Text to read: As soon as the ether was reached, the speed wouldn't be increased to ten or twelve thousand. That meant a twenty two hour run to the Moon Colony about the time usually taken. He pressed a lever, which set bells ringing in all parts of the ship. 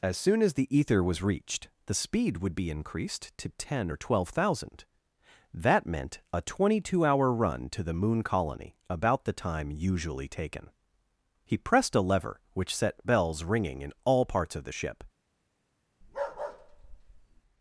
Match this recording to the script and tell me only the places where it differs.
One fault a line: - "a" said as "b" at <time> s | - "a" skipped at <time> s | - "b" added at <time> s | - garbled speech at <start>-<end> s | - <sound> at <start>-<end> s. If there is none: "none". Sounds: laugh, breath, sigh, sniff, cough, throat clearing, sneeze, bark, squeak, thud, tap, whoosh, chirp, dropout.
- "wouldn't" said as "would" at 2.4 s
- bark at 16.0-17.4 s